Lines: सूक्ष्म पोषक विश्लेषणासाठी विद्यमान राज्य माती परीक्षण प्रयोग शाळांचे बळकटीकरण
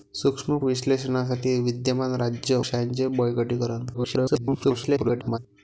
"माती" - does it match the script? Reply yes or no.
no